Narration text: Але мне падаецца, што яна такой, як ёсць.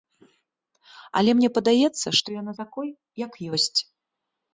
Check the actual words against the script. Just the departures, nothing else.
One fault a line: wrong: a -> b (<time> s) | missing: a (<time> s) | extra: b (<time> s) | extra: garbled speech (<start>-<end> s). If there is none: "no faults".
no faults